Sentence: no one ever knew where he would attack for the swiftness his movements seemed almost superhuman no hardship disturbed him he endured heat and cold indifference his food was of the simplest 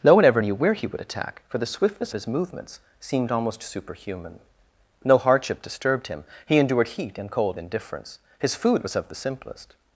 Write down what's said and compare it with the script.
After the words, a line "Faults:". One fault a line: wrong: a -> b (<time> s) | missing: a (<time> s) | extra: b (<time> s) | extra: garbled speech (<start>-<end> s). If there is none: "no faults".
no one ever knew where he would attack for the swiftness his movements seemed almost superhuman no hardship disturbed him he endured heat and cold indifference his food was of the simplest
Faults:
no faults